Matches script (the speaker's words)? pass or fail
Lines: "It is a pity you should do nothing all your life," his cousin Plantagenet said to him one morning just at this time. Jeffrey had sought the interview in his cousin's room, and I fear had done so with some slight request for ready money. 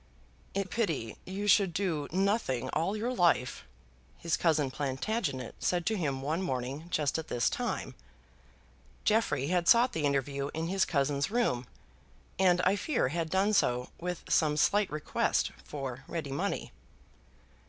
fail